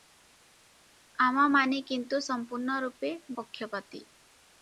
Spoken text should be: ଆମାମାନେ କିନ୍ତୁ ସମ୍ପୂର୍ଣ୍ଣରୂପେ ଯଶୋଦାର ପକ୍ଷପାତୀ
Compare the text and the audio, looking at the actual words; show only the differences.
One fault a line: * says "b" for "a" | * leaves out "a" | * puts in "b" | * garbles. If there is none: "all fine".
* leaves out "ଯଶୋଦାର"